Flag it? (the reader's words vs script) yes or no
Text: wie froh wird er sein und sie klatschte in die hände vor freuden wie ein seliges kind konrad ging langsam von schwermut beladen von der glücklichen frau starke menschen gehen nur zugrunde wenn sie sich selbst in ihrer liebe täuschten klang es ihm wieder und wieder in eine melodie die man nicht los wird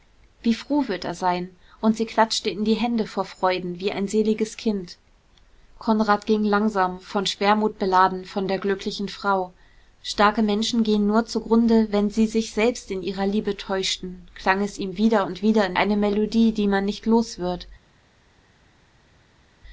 no